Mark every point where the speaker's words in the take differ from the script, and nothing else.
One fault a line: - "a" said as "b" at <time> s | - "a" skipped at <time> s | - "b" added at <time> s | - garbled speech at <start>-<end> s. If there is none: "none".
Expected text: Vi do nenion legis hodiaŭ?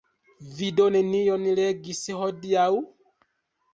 none